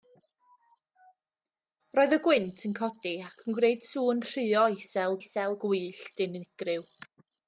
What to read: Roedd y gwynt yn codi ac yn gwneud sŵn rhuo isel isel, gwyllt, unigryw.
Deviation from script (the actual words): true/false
false